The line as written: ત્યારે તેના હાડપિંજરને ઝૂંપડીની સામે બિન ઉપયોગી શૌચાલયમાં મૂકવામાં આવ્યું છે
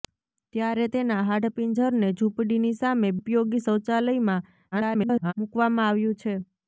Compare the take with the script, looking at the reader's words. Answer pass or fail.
fail